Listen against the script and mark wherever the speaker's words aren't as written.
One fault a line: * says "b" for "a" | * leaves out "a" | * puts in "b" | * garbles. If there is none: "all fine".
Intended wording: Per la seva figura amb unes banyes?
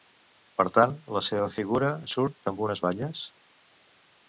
* puts in "tant"
* puts in "surt"